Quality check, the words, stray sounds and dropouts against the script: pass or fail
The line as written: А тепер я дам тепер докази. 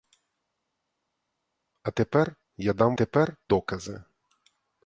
pass